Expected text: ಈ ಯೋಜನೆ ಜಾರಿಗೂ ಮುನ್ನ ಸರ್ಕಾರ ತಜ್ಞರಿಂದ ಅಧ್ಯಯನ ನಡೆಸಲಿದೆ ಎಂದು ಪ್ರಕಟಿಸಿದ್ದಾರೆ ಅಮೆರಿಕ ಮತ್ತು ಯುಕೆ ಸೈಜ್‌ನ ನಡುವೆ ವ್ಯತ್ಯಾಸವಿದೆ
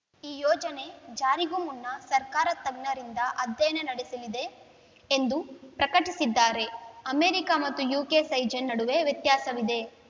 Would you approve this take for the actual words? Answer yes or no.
yes